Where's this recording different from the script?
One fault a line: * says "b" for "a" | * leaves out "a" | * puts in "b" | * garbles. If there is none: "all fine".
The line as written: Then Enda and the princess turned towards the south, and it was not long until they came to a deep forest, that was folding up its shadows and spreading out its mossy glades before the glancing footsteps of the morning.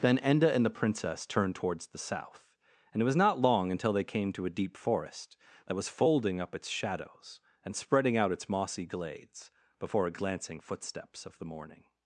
* says "a" for "the"